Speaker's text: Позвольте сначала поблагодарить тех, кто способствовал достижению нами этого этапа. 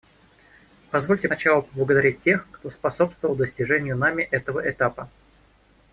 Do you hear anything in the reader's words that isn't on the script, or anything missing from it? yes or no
no